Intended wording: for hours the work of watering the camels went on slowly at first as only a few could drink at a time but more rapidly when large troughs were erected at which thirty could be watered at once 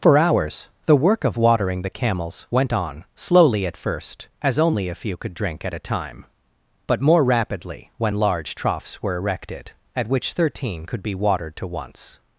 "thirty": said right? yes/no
no